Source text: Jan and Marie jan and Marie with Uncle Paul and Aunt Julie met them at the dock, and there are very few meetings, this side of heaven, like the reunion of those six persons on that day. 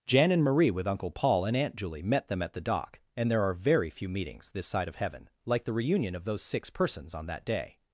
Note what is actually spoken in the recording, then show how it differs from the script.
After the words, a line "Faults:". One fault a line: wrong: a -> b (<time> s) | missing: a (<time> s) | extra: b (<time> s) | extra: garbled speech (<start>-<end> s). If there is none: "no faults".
Jan and Marie with Uncle Paul and Aunt Julie met them at the dock, and there are very few meetings, this side of heaven, like the reunion of those six persons on that day.
Faults:
missing: jan and Marie (0.7 s)